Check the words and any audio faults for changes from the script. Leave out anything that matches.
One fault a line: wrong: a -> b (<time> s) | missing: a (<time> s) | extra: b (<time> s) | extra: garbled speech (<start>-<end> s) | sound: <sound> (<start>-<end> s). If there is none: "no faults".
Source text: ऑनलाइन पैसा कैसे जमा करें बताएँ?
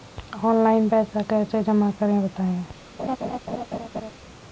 sound: laugh (3.0-4.1 s)